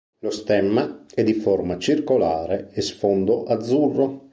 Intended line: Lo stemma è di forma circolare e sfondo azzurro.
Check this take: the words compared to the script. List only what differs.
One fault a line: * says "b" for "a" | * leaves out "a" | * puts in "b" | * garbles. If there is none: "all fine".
all fine